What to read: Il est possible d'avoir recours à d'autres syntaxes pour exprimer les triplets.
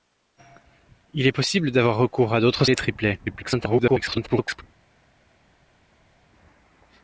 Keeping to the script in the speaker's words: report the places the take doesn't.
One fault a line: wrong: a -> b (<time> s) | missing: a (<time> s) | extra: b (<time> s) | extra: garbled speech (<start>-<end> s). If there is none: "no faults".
missing: syntaxes pour exprimer (2.6 s)
extra: garbled speech (3.3-4.6 s)